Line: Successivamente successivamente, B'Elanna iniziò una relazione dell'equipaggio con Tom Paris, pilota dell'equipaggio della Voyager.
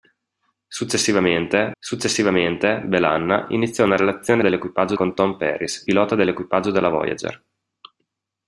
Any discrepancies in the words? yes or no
no